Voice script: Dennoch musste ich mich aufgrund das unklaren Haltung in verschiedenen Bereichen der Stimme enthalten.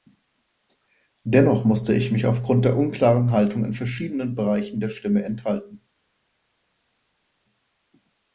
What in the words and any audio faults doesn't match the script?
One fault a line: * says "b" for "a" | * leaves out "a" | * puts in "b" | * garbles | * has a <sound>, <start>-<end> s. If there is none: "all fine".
* says "der" for "das"